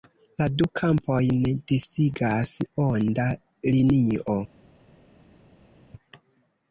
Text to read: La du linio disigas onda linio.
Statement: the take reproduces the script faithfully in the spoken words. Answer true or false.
false